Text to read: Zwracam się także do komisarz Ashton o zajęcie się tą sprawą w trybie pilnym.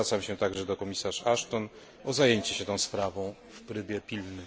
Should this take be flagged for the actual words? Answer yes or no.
no